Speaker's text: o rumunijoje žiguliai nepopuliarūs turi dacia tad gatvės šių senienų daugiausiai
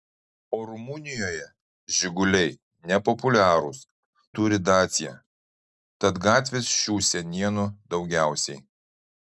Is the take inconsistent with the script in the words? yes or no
no